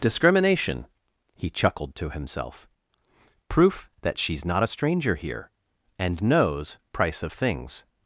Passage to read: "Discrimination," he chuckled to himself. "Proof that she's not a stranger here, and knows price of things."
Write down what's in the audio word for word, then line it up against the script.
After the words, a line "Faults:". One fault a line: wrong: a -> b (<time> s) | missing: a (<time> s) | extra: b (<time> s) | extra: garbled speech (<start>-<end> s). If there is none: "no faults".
"Discrimination," he chuckled to himself. "Proof that she's not a stranger here, and knows price of things."
Faults:
no faults